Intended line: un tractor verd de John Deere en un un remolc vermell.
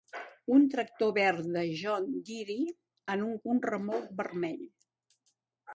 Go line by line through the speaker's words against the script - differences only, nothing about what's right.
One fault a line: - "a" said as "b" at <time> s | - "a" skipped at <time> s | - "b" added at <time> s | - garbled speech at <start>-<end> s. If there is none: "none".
none